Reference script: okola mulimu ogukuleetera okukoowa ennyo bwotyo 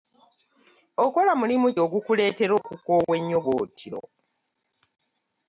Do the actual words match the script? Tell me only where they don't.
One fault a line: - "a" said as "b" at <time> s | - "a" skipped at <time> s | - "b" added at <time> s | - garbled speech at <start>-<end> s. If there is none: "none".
none